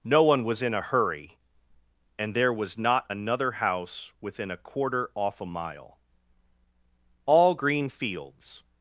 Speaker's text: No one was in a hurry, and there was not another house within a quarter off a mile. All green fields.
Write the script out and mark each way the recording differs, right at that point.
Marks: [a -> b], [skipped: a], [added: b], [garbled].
No one was in a hurry, and there was not another house within a quarter off a mile. All green fields.